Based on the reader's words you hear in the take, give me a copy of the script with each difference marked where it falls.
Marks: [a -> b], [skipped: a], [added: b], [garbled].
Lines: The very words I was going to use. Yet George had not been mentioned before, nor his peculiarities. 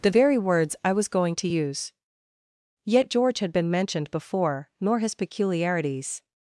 The very words I was going to use. Yet George had [skipped: not] been mentioned before, nor his peculiarities.